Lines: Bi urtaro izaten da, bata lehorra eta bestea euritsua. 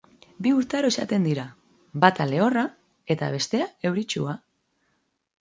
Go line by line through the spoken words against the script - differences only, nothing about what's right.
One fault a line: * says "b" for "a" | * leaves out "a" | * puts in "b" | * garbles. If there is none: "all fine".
* says "dira" for "da"